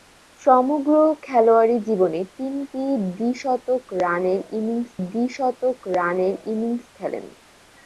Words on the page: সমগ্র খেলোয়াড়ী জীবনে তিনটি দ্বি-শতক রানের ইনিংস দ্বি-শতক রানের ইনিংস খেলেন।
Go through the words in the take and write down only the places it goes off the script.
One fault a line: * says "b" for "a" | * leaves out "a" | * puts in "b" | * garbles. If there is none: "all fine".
all fine